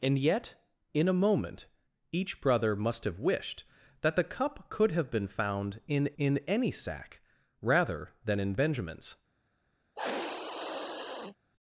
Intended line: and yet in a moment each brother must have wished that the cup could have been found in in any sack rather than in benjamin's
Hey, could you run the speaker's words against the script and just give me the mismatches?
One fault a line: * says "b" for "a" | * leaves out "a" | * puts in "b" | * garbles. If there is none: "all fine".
all fine